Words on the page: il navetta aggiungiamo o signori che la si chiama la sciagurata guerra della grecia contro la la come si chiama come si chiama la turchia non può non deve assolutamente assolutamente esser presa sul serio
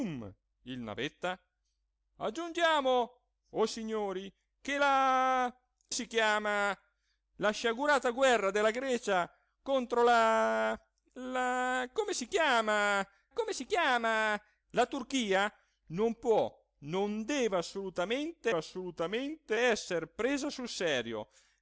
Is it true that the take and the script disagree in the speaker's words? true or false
false